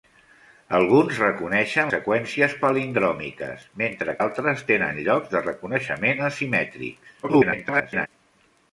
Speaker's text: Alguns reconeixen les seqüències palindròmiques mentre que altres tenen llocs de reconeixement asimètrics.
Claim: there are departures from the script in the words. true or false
true